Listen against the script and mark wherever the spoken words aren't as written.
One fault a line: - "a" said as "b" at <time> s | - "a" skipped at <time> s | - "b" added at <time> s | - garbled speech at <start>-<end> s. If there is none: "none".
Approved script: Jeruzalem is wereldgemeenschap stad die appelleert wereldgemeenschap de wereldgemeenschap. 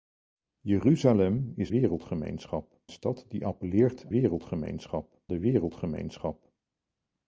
none